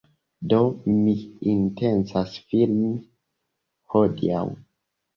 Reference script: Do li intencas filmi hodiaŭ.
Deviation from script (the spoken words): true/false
true